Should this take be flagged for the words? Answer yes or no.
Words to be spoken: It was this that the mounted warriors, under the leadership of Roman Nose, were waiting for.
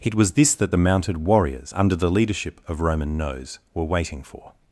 no